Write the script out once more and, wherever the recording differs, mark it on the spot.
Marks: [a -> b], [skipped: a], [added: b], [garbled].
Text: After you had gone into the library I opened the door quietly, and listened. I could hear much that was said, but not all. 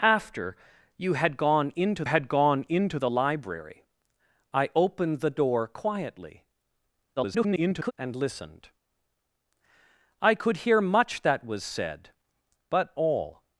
After you had gone into [added: had gone into] the library I opened the door quietly, [garbled] and listened. I could hear much that was said, but [skipped: not] all.